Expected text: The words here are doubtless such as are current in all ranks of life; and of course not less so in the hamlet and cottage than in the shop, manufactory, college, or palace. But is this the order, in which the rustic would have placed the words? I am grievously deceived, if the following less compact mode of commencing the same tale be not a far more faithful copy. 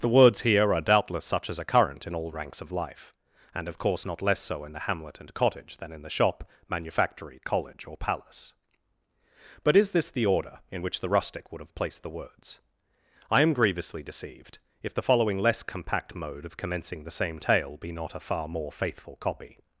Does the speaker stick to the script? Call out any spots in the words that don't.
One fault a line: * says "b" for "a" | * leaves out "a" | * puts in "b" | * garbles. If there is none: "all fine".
all fine